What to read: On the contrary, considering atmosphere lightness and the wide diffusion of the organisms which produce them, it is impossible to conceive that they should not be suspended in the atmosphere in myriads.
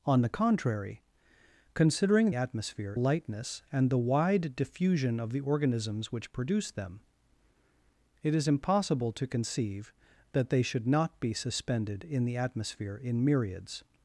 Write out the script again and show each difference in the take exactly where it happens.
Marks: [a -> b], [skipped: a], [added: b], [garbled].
On the contrary, considering atmosphere lightness and the wide diffusion of the organisms which produce them, it is impossible to conceive that they should not be suspended in the atmosphere in myriads.